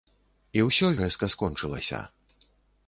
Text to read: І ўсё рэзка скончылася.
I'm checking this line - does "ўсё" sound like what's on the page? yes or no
yes